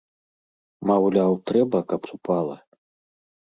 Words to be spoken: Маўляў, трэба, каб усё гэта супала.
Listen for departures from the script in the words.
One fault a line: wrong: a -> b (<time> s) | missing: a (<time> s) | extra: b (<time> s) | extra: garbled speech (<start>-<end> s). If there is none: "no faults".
missing: усё гэта (2.0 s)